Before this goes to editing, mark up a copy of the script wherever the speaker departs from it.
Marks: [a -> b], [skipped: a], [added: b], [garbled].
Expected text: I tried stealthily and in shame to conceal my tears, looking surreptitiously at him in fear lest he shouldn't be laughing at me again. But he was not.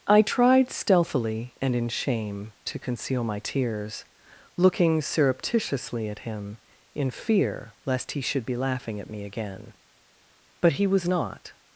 I tried stealthily and in shame to conceal my tears, looking surreptitiously at him in fear lest he [shouldn't -> should] be laughing at me again. But he was not.